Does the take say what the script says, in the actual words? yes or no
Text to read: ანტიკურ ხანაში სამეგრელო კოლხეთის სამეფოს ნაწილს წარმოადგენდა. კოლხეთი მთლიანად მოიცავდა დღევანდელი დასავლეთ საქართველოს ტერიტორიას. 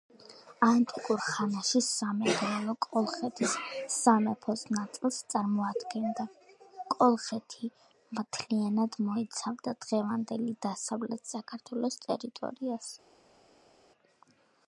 yes